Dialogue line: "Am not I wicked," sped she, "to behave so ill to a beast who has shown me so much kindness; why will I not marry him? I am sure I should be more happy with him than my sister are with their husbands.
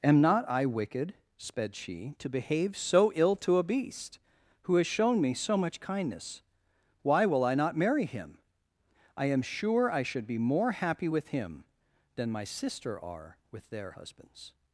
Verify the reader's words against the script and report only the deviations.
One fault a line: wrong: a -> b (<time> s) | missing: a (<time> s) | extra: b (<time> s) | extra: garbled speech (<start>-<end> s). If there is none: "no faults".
no faults